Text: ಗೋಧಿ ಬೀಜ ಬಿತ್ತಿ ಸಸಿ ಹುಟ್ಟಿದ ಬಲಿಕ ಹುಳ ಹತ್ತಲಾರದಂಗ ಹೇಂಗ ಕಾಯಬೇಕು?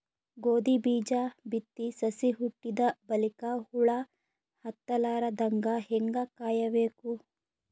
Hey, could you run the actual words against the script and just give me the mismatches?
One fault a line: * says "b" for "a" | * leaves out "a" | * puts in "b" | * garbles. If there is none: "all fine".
all fine